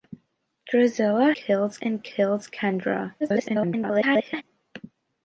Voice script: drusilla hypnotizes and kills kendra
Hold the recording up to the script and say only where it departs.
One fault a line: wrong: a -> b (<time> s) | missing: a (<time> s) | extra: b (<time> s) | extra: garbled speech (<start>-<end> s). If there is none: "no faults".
wrong: hypnotizes -> kills (1.3 s)
extra: garbled speech (3.2-4.4 s)